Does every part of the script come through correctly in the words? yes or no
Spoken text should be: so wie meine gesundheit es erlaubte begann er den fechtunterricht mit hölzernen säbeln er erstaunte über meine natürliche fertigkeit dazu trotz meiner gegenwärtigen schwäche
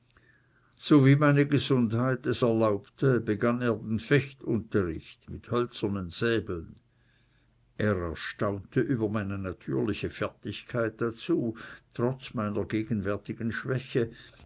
yes